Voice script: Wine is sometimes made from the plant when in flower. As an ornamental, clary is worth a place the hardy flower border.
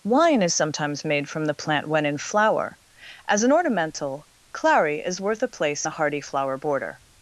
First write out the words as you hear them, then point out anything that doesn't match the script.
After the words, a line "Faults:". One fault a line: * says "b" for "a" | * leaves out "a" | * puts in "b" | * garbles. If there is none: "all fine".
Wine is sometimes made from the plant when in flower. As an ornamental, clary is worth a place the hardy flower border.
Faults:
all fine